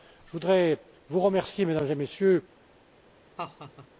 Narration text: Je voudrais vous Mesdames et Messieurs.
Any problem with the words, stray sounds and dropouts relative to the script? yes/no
yes